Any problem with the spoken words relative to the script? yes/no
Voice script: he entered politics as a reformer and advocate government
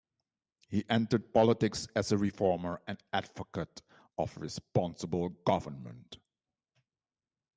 yes